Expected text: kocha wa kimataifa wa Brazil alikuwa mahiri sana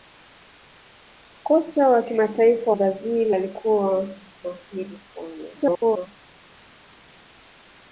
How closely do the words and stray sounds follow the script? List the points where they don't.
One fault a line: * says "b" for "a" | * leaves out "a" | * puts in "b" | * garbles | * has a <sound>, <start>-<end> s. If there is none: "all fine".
* leaves out "wa"
* garbles